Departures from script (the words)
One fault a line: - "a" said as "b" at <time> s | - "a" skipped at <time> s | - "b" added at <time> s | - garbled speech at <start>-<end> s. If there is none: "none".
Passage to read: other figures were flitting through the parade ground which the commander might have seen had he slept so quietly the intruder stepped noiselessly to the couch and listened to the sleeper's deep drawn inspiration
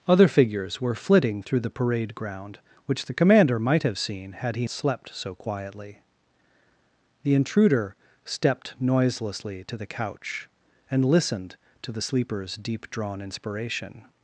none